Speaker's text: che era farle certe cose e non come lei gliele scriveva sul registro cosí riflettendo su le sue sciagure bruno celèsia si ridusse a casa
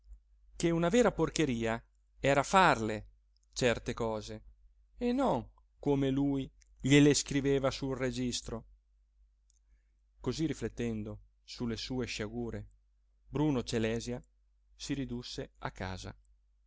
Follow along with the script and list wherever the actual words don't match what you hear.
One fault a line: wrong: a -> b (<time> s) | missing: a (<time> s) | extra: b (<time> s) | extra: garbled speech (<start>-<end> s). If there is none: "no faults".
extra: una vera porcheria (0.7 s)
wrong: lei -> lui (6.1 s)